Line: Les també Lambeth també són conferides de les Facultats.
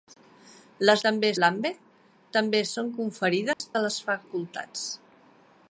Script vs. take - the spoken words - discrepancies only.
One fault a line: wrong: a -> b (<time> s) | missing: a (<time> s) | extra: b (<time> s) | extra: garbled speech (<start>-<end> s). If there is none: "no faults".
no faults